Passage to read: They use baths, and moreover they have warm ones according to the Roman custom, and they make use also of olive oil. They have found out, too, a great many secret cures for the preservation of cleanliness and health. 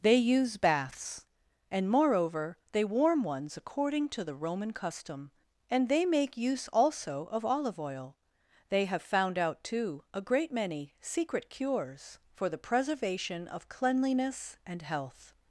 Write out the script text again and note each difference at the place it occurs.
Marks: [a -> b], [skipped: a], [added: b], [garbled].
They use baths, and moreover they [skipped: have] warm ones according to the Roman custom, and they make use also of olive oil. They have found out, too, a great many secret cures for the preservation of cleanliness and health.